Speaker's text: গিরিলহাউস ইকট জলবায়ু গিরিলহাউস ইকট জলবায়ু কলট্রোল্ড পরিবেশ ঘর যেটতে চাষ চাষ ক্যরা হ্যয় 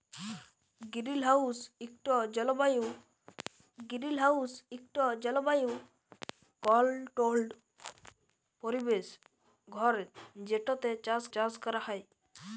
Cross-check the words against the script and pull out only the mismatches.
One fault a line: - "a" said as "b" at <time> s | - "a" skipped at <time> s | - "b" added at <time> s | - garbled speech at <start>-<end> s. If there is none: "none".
none